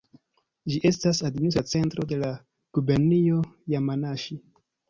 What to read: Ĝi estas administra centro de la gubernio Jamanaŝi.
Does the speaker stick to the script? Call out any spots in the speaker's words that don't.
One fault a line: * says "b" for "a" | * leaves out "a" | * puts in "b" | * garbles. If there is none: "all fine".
all fine